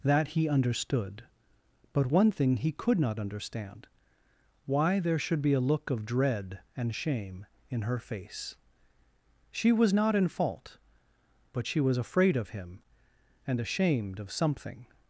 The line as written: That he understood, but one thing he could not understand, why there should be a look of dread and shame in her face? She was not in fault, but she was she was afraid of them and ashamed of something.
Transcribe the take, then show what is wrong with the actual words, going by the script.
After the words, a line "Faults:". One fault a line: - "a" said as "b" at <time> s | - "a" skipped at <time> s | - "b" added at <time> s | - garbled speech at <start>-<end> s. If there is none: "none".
That he understood, but one thing he could not understand, why there should be a look of dread and shame in her face? She was not in fault, but she was afraid of him and ashamed of something.
Faults:
- "she was" skipped at 12.0 s
- "them" said as "him" at 12.5 s